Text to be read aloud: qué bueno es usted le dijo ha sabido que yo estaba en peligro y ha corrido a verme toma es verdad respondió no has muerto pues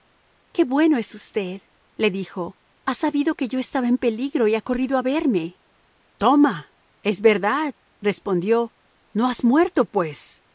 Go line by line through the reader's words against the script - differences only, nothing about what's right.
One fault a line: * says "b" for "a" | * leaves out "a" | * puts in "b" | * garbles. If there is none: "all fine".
all fine